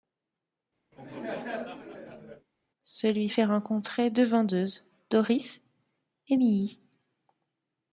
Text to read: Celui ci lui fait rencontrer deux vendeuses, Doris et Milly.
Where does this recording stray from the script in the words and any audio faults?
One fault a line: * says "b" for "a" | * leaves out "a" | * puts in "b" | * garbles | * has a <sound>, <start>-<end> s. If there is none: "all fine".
* has a laugh, 0.9-2.5 s
* leaves out "ci lui"